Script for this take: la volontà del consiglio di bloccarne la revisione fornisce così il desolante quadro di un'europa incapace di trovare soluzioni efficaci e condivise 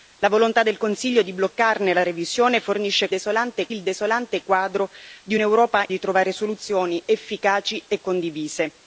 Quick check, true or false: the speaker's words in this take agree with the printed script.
false